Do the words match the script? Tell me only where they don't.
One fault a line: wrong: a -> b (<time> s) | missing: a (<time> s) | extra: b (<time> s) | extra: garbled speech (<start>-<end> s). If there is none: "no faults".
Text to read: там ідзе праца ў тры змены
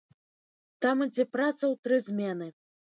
no faults